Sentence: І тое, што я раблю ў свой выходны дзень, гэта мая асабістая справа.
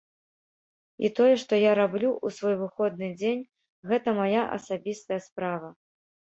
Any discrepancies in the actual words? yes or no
no